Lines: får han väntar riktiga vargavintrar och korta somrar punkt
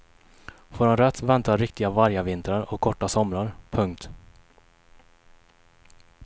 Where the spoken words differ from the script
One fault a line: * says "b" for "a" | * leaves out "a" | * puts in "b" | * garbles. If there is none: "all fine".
* puts in "rätt"